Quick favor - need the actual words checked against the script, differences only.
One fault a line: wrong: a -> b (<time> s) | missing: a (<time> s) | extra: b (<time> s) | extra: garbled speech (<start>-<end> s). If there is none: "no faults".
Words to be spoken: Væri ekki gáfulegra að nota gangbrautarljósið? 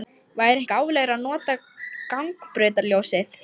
missing: ekki (0.6 s)